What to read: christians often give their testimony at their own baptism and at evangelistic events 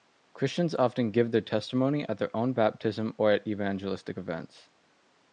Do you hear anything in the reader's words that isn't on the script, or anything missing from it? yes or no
yes